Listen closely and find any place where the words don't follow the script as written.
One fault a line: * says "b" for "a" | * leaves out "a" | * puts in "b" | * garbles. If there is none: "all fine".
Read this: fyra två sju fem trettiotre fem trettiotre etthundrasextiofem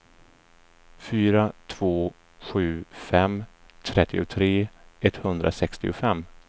* leaves out "fem trettiotre"